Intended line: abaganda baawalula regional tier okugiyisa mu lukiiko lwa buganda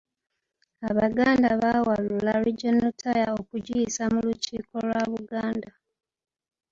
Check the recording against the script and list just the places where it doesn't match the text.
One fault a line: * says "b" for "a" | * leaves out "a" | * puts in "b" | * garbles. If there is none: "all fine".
all fine